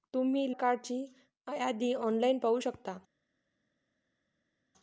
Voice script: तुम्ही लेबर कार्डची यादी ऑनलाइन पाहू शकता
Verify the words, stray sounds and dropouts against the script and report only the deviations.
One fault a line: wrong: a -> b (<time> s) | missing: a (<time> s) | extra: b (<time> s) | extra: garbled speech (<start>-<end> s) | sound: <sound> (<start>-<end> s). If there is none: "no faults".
missing: लेबर (0.5 s)